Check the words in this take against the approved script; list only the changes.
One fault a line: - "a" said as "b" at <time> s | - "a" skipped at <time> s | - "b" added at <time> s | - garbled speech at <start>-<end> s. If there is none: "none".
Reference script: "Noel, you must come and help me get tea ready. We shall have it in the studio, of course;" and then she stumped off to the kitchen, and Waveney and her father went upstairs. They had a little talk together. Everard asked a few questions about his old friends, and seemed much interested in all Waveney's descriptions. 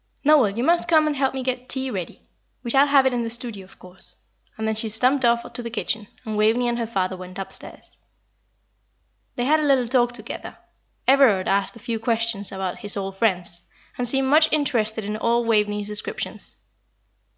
none